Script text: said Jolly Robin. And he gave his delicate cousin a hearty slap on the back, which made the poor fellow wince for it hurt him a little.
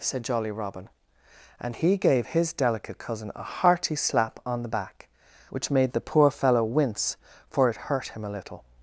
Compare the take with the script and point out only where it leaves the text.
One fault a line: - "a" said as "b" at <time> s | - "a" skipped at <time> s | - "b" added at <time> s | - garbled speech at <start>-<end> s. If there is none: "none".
none